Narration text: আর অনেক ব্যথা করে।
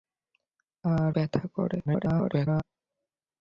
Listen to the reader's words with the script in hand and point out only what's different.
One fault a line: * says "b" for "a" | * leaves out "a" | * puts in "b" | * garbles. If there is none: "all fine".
* leaves out "অনেক"
* garbles